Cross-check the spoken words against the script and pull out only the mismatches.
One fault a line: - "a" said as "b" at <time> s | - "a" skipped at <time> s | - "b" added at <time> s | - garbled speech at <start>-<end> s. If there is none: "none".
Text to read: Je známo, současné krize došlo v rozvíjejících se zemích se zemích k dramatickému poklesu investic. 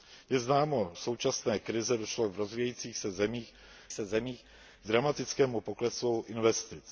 none